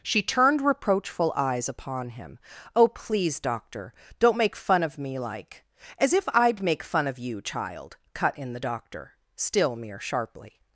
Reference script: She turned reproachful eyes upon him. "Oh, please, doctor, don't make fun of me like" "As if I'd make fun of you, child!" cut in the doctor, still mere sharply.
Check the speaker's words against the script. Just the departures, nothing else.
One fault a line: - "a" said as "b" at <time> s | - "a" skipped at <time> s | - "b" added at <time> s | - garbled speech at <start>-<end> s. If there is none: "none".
none